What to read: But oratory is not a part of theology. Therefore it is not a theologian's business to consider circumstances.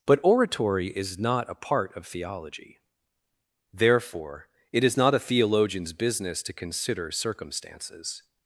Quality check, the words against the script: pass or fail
pass